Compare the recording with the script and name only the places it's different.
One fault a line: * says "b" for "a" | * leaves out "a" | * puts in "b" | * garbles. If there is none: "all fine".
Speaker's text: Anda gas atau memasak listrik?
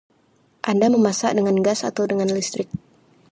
* puts in "memasak dengan"
* says "dengan" for "memasak"